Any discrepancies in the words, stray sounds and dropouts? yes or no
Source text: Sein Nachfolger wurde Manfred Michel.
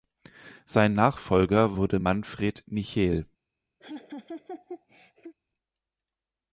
yes